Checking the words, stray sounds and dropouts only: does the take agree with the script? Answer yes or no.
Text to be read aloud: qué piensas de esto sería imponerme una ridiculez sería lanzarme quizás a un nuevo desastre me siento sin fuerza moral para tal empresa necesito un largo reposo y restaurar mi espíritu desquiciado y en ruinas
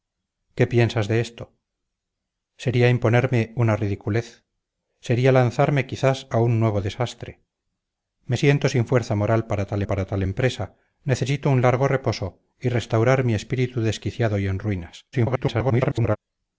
no